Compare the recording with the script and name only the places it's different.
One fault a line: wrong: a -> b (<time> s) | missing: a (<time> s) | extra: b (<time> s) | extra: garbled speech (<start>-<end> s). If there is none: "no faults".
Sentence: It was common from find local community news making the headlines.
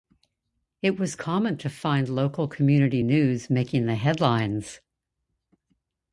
wrong: from -> to (1.6 s)